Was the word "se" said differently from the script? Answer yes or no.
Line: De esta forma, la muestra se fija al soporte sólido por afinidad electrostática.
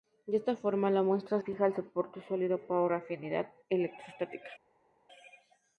yes